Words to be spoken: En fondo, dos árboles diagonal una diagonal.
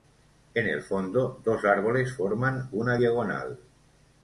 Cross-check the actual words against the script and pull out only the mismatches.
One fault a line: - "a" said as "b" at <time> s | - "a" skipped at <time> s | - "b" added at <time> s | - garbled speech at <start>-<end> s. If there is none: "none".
- "el" added at 0.7 s
- "diagonal" said as "forman" at 2.2 s